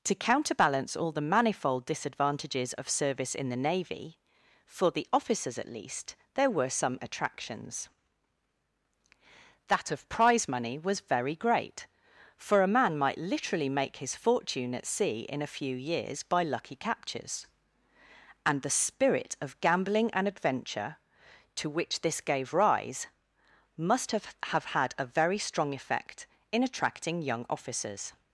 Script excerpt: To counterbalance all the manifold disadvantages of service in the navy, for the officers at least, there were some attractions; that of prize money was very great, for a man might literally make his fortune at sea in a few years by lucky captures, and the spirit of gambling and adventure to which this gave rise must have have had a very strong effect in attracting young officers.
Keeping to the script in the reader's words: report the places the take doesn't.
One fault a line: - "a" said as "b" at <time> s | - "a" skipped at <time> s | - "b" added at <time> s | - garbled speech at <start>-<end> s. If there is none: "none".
none